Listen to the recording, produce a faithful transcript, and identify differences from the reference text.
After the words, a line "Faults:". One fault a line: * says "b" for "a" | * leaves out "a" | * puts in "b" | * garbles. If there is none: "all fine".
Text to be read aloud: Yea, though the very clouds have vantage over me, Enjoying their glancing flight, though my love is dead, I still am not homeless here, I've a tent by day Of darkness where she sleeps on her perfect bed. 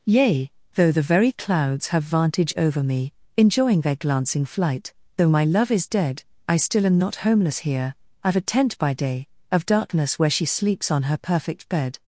Yea, though the very clouds have vantage over me, Enjoying their glancing flight, though my love is dead, I still am not homeless here, I've a tent by day Of darkness where she sleeps on her perfect bed.
Faults:
all fine